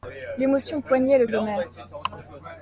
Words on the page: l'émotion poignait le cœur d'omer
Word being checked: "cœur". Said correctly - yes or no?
no